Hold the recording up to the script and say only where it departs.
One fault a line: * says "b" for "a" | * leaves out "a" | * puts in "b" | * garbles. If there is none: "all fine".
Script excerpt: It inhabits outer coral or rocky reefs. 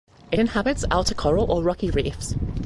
all fine